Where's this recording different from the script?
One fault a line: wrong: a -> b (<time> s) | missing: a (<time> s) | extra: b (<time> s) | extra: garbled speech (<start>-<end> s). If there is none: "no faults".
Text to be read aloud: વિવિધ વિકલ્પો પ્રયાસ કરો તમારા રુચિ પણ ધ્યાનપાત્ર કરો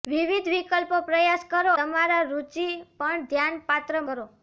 no faults